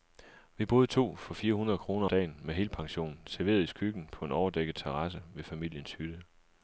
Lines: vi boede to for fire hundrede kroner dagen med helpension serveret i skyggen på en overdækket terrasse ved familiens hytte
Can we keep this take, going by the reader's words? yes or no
yes